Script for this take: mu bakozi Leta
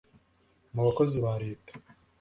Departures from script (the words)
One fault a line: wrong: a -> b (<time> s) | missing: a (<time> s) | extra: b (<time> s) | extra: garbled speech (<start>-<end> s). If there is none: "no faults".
extra: ba (1.2 s)